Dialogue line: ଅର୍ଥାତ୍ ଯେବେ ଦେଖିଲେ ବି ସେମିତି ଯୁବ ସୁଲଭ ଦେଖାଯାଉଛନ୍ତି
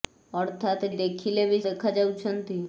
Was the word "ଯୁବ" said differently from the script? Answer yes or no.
yes